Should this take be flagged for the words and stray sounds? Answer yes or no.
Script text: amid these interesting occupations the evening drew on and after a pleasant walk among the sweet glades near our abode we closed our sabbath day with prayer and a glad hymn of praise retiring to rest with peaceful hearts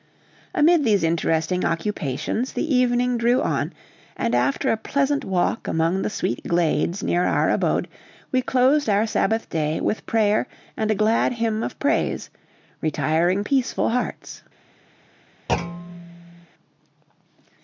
yes